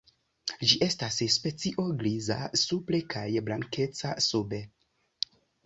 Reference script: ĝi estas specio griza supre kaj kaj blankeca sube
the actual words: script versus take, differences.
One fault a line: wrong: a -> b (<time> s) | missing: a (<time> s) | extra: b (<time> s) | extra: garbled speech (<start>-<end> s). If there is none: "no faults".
missing: kaj (3.3 s)